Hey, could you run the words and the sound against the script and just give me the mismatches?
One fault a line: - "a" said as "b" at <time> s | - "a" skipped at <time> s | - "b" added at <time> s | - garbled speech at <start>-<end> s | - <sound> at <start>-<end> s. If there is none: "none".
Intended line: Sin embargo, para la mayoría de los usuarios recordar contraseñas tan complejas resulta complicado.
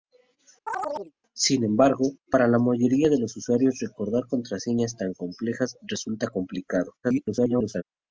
- chirp at 0.7-1.1 s
- garbled speech at 7.0-7.8 s